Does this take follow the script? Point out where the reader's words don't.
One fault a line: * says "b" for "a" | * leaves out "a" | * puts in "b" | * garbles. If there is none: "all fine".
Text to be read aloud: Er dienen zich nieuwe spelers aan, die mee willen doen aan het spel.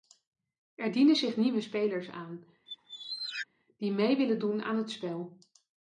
all fine